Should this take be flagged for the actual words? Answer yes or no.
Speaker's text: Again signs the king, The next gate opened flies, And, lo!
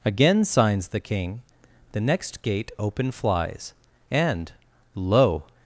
yes